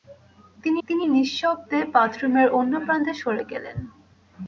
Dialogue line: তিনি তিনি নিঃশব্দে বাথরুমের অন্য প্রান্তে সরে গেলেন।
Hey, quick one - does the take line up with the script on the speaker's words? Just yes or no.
yes